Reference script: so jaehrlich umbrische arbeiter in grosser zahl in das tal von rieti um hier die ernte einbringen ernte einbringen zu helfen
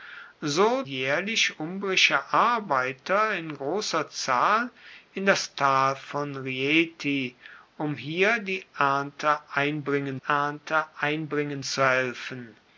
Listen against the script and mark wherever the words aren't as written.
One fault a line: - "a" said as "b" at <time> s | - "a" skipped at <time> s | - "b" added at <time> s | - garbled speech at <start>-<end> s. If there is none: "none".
none